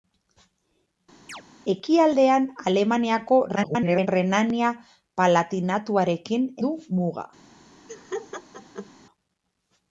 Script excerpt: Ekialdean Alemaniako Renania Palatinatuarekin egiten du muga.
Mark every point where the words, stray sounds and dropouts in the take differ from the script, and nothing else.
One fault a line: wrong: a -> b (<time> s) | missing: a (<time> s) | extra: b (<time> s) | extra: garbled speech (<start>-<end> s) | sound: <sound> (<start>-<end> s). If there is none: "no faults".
sound: chirp (1.3-1.4 s)
extra: garbled speech (3.6-4.1 s)
missing: egiten (6.5 s)
sound: laugh (7.9-8.9 s)